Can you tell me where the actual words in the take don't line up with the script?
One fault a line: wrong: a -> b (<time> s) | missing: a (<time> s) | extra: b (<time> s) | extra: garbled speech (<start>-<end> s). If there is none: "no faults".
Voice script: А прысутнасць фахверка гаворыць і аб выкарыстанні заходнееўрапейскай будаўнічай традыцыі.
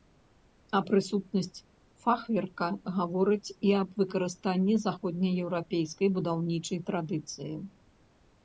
no faults